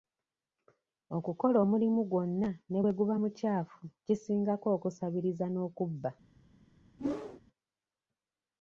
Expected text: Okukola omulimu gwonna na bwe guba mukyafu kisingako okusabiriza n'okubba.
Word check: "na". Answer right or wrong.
wrong